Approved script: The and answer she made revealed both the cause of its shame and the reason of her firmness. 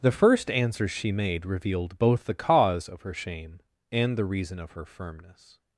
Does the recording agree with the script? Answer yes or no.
no